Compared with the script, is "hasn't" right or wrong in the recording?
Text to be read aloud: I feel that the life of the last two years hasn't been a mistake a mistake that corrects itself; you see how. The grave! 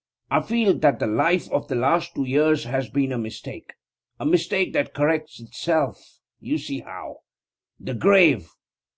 wrong